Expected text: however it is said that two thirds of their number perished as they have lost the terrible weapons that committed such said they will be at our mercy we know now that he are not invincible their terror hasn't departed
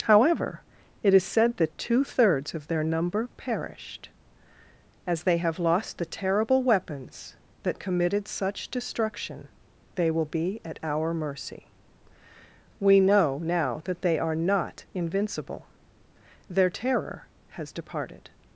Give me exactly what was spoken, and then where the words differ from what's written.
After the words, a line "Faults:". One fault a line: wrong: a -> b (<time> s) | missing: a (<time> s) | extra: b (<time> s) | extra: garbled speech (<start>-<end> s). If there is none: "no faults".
however it is said that two thirds of their number perished as they have lost the terrible weapons that committed such destruction they will be at our mercy we know now that they are not invincible their terror has departed
Faults:
wrong: said -> destruction (8.7 s)
wrong: he -> they (14.0 s)
wrong: hasn't -> has (17.5 s)